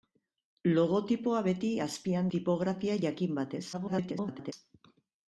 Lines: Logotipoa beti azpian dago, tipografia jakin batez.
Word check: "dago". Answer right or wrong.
wrong